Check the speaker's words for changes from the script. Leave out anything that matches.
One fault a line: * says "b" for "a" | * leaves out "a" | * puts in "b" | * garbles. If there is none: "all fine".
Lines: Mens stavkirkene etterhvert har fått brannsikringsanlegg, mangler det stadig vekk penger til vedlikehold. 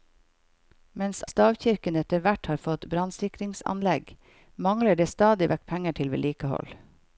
all fine